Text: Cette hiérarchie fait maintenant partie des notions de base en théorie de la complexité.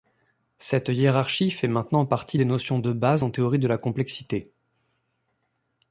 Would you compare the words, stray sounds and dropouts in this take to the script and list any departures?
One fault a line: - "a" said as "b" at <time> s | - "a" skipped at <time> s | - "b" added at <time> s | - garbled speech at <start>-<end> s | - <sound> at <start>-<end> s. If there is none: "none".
none